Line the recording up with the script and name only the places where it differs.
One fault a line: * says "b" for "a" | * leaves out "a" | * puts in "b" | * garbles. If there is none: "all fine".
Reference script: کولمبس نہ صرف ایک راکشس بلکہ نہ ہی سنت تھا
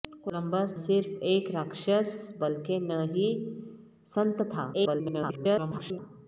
* leaves out "نہ"
* garbles